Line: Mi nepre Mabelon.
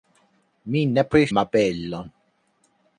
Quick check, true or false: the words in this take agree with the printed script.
true